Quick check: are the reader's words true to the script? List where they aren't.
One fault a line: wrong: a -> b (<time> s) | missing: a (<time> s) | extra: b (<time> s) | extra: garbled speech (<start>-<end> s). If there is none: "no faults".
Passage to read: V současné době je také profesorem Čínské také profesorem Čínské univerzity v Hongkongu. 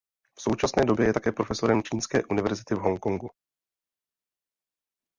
missing: také profesorem Čínské (2.2 s)